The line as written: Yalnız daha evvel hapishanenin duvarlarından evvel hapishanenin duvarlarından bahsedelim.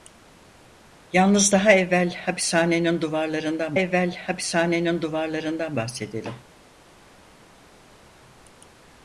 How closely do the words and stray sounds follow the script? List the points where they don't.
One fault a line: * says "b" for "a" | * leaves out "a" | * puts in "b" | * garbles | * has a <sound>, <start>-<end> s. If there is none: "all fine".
all fine